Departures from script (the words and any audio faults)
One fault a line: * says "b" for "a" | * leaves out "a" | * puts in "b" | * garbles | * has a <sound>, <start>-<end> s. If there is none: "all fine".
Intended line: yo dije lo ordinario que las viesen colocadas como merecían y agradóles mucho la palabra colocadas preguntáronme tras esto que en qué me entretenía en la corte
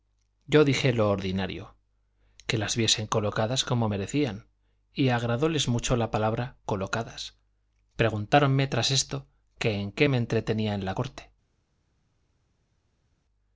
all fine